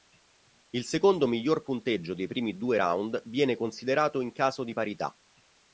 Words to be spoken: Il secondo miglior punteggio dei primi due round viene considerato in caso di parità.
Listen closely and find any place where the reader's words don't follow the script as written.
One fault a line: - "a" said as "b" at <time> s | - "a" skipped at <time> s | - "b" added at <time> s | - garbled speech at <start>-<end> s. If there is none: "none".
none